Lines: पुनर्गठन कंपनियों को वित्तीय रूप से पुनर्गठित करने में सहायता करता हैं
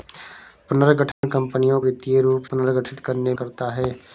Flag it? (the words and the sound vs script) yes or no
yes